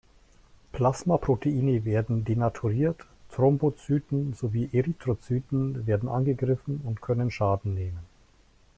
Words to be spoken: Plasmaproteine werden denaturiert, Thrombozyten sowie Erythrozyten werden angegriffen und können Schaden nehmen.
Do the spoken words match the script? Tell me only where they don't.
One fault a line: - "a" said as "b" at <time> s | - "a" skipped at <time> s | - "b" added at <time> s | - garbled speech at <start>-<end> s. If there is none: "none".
none